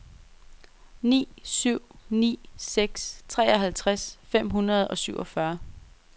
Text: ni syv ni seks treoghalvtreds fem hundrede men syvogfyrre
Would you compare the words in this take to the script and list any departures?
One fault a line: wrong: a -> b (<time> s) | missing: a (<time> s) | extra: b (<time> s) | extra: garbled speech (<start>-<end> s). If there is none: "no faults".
wrong: men -> og (4.9 s)